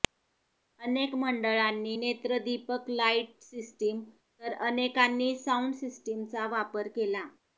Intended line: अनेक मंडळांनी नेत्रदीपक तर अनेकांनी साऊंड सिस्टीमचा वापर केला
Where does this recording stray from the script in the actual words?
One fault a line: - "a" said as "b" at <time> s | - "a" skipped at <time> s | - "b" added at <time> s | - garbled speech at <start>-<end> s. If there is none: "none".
- "लाईट सिस्टीम" added at 2.9 s